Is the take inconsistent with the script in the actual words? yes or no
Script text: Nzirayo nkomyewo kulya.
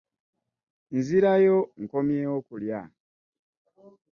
no